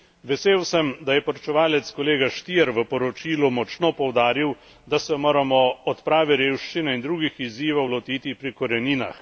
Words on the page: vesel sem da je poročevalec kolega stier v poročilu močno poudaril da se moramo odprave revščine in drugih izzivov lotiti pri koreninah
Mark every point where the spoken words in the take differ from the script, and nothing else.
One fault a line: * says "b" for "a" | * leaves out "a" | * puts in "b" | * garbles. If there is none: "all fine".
all fine